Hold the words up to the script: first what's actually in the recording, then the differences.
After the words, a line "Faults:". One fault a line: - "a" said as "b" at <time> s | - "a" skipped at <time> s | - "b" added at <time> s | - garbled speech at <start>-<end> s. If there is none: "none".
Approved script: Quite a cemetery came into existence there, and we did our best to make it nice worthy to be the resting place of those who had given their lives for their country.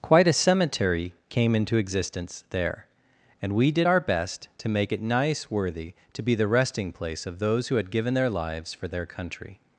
Quite a cemetery came into existence there, and we did our best to make it nice worthy to be the resting place of those who had given their lives for their country.
Faults:
none